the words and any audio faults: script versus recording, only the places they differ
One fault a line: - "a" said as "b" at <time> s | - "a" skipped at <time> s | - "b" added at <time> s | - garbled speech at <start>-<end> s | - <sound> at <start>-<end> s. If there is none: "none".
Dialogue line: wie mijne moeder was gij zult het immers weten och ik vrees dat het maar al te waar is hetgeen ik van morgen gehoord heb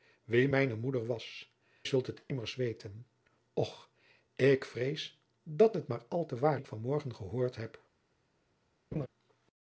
- "gij" skipped at 1.5 s
- "is hetgeen" skipped at 6.6 s
- laugh at 8.9-9.1 s